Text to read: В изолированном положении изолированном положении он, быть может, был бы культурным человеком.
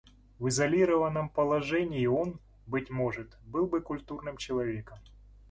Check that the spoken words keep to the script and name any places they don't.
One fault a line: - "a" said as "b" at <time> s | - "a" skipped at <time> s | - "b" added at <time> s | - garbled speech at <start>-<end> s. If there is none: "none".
- "изолированном положении" skipped at 2.1 s